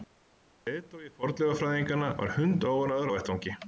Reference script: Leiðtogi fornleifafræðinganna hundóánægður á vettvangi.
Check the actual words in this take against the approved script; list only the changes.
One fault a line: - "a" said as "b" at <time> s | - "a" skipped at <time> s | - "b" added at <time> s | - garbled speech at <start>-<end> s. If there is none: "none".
- "var" added at 2.2 s